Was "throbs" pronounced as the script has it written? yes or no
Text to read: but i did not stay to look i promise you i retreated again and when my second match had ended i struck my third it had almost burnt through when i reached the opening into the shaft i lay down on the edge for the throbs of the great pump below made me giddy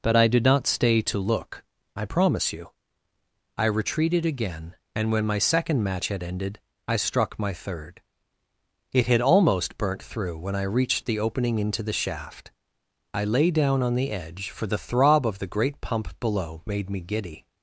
no